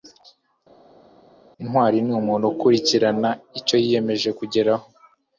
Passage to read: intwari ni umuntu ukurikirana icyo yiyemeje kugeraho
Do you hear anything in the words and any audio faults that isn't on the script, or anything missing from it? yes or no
no